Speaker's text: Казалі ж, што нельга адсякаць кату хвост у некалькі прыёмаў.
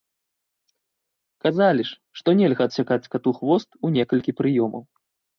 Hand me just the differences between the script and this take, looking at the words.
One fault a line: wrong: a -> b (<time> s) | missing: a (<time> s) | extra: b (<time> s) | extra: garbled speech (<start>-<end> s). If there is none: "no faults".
no faults